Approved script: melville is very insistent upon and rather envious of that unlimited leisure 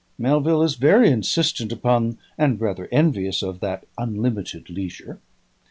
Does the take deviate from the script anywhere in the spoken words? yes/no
no